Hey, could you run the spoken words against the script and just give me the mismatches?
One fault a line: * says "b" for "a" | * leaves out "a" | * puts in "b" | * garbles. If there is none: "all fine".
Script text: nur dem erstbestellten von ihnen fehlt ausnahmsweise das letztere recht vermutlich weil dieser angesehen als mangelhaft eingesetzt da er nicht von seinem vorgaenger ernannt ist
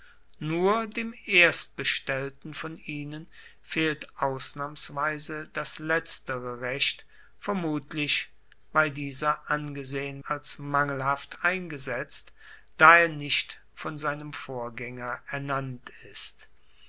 all fine